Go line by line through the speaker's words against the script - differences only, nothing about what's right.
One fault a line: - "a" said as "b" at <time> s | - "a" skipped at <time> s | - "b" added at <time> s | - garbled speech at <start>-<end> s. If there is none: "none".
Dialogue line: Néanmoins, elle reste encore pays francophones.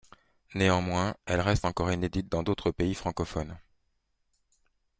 - "inédite dans d'autres" added at 1.9 s